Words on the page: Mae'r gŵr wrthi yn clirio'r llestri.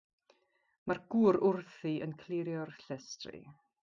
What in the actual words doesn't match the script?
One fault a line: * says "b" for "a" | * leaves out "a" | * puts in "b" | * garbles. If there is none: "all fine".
all fine